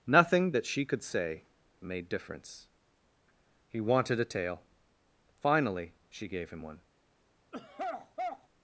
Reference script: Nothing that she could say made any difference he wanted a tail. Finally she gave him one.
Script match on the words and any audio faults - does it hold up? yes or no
no